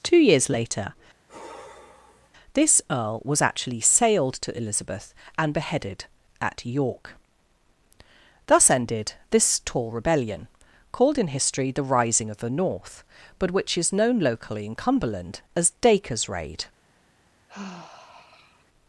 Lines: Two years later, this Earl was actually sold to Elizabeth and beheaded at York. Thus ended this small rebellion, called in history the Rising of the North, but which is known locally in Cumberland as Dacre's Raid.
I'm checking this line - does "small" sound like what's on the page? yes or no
no